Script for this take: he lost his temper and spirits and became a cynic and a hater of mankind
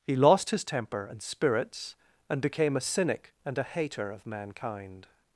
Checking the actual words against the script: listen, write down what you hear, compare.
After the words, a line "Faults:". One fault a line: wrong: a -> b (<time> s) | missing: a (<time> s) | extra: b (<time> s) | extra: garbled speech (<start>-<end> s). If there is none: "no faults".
he lost his temper and spirits and became a cynic and a hater of mankind
Faults:
no faults